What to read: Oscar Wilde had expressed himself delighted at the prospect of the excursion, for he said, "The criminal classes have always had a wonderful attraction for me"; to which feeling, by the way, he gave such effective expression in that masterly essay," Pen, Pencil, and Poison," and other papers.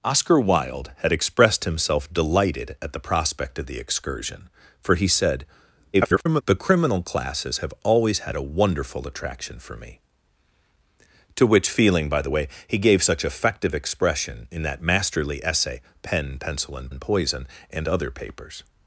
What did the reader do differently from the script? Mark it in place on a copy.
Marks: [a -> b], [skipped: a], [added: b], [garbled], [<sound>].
Oscar Wilde had expressed himself delighted at the prospect of the excursion, for he said, [garbled] "The criminal classes have always had a wonderful attraction for me"; to which feeling, by the way, he gave such effective expression in that masterly essay," Pen, Pencil, and [added: and] Poison," and other papers.